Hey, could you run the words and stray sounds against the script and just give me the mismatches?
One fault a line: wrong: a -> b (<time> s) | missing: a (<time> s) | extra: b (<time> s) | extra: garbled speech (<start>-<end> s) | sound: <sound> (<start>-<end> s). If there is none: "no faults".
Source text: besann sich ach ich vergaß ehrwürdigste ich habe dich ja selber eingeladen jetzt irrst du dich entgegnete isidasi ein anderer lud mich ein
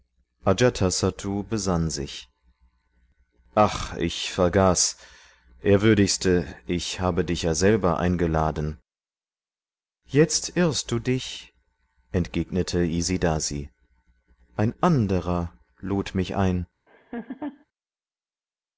sound: laugh (16.9-17.7 s)